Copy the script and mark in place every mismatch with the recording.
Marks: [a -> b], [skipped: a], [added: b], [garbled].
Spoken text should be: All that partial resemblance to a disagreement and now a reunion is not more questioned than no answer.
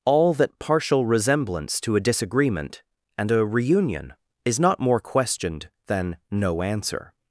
All that partial resemblance to a disagreement and [skipped: now] a reunion is not more questioned than no answer.